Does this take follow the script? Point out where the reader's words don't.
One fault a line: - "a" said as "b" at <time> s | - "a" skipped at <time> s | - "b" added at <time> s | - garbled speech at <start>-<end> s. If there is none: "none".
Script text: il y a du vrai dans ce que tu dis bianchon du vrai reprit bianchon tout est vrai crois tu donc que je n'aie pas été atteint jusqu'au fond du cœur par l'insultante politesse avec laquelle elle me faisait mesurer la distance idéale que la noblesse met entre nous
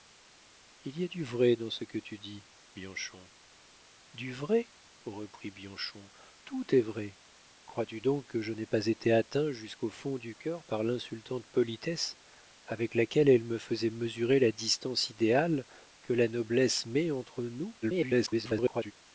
- garbled speech at 17.8-18.9 s